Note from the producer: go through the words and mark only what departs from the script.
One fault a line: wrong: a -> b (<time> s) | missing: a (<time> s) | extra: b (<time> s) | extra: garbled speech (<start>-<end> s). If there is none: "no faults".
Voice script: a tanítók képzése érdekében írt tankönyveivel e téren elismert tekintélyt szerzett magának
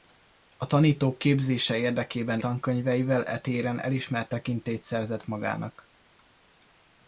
missing: írt (2.4 s)